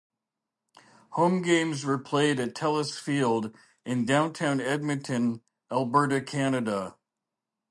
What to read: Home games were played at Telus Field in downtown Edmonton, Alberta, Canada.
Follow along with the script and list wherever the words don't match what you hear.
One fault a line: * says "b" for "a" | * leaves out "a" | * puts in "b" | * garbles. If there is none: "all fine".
all fine